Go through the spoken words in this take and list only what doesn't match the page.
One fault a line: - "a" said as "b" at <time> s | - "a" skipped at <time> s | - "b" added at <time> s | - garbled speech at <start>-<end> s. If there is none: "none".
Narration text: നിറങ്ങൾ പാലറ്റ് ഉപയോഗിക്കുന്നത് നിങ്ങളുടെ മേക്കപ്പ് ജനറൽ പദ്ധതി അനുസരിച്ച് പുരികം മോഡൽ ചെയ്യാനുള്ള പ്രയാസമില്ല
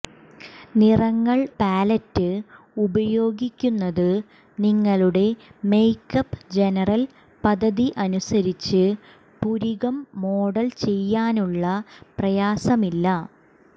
none